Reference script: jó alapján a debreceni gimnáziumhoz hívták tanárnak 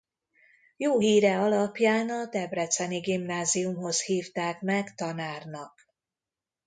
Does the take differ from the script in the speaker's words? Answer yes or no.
yes